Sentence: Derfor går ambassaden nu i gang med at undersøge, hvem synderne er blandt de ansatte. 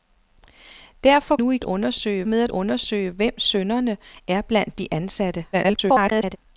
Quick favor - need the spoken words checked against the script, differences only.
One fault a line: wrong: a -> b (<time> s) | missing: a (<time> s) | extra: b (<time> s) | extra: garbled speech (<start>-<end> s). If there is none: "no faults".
missing: går ambassaden (1.4 s)
wrong: gang -> undersøge (1.6 s)
extra: garbled speech (5.5-6.4 s)